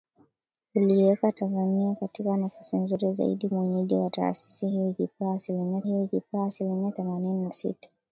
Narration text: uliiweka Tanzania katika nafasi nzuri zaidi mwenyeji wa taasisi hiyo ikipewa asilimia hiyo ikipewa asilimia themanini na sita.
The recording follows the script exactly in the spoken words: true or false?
true